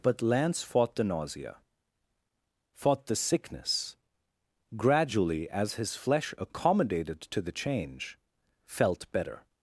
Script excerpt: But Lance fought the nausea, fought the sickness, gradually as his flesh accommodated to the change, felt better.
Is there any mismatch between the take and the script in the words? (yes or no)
no